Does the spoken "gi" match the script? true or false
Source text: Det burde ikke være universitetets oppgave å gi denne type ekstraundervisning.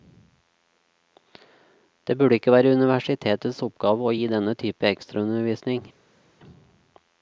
true